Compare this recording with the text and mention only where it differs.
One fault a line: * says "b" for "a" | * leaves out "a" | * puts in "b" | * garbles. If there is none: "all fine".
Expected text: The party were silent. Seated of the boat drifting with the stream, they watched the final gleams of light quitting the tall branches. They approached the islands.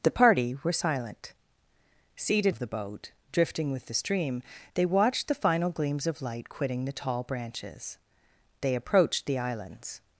all fine